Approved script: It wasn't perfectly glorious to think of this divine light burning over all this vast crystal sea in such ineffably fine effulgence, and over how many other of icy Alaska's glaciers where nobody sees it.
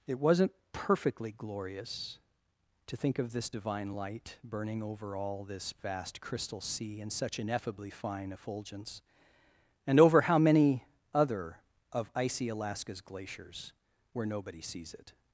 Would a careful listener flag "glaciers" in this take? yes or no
no